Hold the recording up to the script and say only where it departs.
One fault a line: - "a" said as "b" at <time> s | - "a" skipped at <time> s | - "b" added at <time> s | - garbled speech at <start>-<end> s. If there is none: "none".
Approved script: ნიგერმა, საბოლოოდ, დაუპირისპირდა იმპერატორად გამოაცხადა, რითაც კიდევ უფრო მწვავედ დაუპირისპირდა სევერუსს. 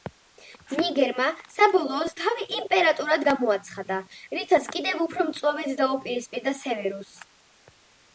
- "დაუპირისპირდა" said as "თავი" at 2.2 s